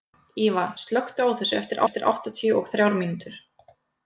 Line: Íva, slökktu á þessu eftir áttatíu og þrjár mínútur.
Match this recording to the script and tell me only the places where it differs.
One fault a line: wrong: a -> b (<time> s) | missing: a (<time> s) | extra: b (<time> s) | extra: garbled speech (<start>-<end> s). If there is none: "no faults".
extra: eftir (1.8 s)